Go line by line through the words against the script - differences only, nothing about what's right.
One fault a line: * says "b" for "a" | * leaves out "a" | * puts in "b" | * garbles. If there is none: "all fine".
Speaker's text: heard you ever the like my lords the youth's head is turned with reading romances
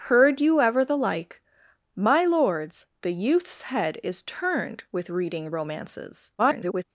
* garbles